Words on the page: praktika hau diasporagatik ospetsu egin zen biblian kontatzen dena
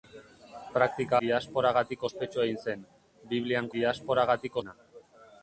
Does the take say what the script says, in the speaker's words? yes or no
no